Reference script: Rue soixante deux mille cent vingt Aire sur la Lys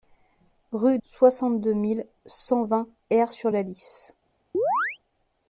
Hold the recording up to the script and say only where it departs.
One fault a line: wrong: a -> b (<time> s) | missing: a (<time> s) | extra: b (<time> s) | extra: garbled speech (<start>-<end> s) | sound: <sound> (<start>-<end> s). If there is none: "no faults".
sound: chirp (4.5-5.0 s)